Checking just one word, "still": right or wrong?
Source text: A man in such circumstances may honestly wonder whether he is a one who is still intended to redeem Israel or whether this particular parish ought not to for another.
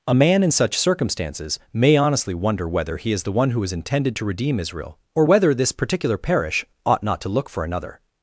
wrong